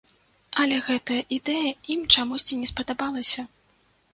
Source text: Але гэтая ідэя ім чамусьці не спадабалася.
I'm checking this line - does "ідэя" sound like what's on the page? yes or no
yes